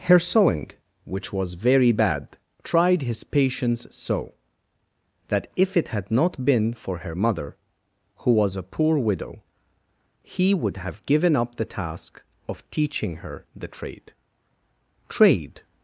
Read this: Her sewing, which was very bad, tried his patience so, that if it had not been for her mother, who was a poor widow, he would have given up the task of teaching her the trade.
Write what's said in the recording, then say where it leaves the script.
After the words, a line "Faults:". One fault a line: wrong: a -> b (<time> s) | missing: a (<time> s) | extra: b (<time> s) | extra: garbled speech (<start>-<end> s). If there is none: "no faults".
Her sewing, which was very bad, tried his patience so, that if it had not been for her mother, who was a poor widow, he would have given up the task of teaching her the trade trade.
Faults:
extra: trade (15.1 s)